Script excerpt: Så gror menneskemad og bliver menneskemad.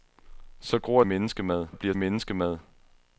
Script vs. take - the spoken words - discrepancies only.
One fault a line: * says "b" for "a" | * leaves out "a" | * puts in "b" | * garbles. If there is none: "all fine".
all fine